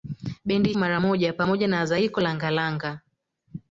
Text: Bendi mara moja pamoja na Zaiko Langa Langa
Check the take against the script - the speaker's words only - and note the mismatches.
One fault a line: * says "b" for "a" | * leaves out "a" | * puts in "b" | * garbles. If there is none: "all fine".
all fine